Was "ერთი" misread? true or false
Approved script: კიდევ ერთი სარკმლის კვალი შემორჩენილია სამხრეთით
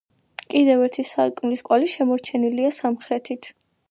false